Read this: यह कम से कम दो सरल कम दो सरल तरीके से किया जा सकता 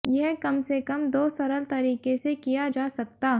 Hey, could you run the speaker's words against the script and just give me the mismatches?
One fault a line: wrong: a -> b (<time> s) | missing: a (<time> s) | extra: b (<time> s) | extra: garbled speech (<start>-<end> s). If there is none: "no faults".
missing: कम दो सरल (1.6 s)